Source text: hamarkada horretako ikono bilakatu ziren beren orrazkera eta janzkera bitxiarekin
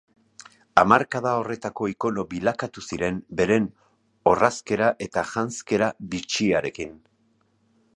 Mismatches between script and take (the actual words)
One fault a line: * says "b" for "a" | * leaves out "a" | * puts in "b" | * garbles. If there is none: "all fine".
all fine